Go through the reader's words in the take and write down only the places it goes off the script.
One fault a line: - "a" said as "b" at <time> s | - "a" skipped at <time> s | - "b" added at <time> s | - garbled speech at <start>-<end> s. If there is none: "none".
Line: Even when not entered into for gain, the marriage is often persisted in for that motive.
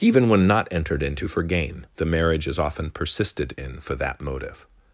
none